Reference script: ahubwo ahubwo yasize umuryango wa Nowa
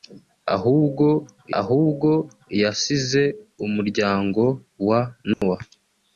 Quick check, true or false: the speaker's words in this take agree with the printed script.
true